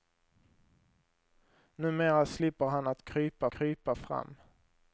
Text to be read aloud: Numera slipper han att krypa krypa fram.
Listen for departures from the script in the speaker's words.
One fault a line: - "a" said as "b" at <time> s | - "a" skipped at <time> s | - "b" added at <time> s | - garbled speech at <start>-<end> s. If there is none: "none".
none